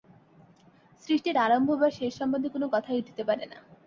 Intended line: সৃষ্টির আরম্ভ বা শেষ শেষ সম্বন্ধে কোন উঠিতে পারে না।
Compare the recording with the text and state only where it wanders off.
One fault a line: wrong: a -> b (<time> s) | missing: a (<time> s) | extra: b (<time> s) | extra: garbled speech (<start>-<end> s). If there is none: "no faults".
missing: শেষ (2.1 s)
extra: কথাই (2.7 s)